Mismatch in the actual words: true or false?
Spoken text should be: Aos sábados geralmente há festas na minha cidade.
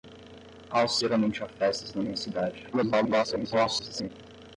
true